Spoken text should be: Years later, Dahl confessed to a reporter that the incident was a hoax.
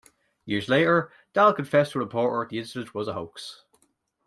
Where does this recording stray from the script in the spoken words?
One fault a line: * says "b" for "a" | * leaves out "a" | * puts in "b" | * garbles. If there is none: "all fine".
* leaves out "that"